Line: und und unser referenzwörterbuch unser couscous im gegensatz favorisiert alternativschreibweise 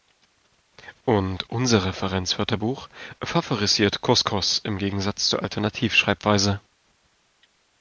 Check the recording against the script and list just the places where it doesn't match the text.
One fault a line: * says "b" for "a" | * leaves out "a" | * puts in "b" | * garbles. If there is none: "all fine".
* leaves out "und"
* says "favorisiert" for "unser"
* says "zur" for "favorisiert"